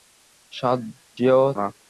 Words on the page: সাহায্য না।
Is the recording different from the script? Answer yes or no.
no